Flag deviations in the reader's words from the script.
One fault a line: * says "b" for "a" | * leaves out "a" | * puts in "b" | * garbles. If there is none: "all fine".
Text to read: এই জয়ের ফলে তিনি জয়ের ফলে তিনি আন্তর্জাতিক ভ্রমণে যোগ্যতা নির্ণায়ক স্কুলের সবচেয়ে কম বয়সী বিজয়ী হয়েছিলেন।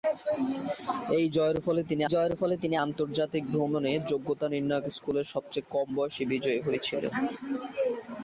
all fine